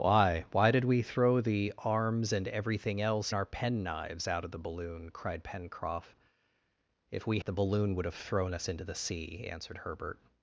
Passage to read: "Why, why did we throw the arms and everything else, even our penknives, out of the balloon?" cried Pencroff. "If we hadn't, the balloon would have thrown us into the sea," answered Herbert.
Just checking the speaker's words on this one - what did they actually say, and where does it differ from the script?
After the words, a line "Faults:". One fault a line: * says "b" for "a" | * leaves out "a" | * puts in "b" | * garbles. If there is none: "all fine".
"Why, why did we throw the arms and everything else, our penknives, out of the balloon?" cried Pencroff. "If we the balloon would have thrown us into the sea," answered Herbert.
Faults:
* leaves out "even"
* leaves out "hadn't"